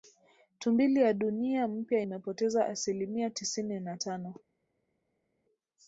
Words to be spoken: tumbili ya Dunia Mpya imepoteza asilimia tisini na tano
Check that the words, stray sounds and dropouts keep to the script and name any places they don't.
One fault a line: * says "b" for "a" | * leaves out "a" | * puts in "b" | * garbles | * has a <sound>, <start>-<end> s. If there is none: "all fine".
all fine